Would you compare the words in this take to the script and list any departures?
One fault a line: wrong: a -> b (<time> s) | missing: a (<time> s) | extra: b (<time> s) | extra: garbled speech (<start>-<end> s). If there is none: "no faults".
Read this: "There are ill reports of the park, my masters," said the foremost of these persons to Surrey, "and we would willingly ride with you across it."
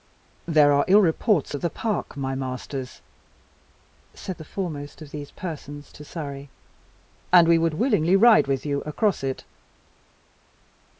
no faults